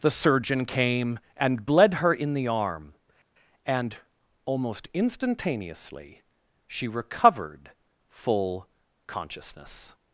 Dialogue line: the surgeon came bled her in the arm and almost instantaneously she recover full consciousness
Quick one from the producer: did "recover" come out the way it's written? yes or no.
no